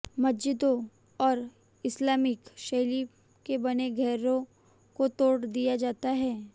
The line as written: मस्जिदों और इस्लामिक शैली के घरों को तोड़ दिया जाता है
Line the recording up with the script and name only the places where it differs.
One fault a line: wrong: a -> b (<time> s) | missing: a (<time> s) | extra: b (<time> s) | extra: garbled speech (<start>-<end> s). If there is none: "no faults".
extra: बने (3.6 s)